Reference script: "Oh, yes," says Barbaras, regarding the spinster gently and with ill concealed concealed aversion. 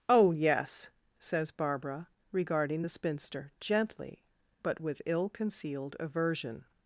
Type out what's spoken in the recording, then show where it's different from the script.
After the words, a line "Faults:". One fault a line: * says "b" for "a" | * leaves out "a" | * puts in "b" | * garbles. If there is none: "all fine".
"Oh, yes," says Barbara, regarding the spinster gently but with ill concealed aversion.
Faults:
* says "Barbara" for "Barbaras"
* says "but" for "and"
* leaves out "concealed"